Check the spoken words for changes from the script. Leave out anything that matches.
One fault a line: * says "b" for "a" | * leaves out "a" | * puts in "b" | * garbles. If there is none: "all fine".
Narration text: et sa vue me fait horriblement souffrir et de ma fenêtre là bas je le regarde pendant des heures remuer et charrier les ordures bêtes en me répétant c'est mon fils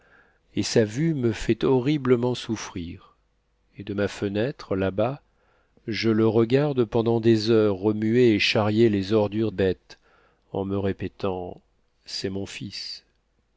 all fine